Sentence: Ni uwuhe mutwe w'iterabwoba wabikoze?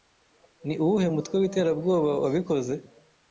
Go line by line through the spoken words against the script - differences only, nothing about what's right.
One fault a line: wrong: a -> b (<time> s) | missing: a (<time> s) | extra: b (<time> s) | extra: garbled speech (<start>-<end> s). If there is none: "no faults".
no faults